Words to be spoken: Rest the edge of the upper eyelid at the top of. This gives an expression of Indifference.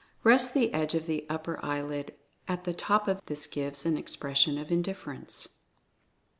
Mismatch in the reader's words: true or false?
false